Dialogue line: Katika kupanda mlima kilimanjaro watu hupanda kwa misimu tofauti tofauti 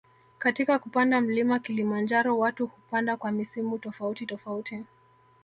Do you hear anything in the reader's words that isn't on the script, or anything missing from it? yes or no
no